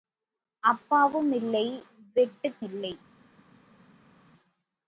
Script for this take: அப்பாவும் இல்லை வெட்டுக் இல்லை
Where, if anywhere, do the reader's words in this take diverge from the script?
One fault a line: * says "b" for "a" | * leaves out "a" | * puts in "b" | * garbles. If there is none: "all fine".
all fine